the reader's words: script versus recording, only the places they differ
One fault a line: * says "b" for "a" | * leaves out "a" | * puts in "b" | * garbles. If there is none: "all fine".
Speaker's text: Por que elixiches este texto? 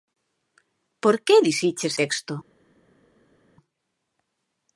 * leaves out "este"